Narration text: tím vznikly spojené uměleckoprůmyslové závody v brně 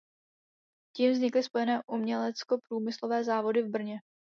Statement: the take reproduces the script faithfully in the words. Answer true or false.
true